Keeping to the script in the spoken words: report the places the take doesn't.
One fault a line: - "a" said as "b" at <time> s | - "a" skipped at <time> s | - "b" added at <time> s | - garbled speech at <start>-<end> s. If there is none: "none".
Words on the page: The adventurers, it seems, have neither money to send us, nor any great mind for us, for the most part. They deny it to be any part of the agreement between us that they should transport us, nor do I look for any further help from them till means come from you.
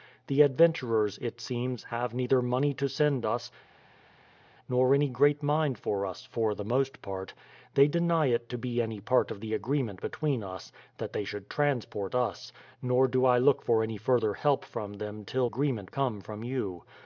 - "means" said as "agreement" at 15.4 s